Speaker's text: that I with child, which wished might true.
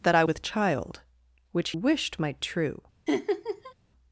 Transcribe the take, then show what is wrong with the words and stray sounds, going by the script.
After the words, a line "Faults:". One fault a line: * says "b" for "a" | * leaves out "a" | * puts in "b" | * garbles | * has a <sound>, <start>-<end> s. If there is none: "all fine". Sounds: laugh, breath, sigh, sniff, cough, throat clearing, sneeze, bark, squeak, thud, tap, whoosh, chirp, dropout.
that I with child, which wished might true.
Faults:
* has a laugh, 3.1-3.7 s